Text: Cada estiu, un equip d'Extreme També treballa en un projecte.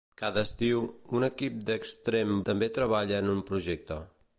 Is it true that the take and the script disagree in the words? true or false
false